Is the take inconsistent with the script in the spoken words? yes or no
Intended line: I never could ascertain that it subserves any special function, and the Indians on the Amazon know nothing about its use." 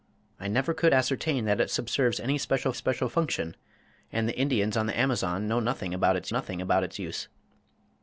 yes